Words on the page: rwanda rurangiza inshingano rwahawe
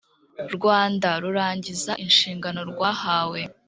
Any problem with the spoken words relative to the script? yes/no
no